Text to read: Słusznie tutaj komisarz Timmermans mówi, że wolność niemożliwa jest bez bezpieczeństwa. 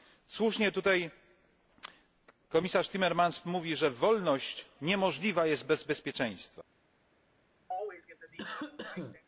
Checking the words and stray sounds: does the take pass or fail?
fail